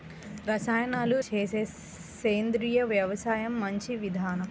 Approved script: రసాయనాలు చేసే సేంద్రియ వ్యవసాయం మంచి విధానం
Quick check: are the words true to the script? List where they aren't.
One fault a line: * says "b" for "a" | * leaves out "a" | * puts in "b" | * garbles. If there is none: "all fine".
all fine